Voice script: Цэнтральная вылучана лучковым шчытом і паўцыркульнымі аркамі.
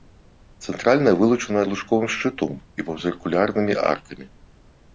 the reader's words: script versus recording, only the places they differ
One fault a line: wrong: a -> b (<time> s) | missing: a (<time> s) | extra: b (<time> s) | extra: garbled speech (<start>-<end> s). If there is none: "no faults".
no faults